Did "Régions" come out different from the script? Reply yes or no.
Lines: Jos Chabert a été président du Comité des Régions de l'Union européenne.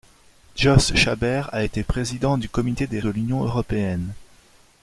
yes